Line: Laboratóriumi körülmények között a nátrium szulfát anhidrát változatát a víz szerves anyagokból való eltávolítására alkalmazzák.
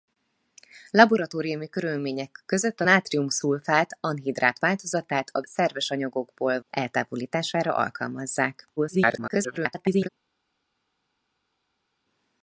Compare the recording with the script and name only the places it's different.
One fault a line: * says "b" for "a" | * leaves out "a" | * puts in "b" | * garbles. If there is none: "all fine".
* leaves out "víz"
* leaves out "való"
* garbles